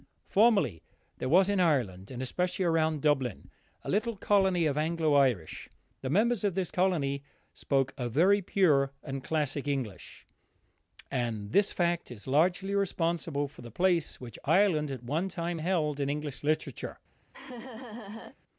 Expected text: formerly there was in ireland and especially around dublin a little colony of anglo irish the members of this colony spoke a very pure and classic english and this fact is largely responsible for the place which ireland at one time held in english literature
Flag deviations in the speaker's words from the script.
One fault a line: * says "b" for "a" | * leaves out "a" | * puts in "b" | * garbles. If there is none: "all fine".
all fine